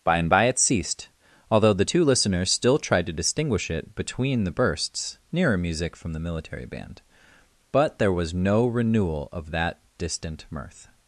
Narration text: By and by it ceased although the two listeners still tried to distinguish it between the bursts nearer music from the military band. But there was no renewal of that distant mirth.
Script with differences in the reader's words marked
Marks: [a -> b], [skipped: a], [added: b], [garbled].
By and by it ceased although the two listeners still tried to distinguish it between the bursts nearer music from the military band. But there was no renewal of that distant mirth.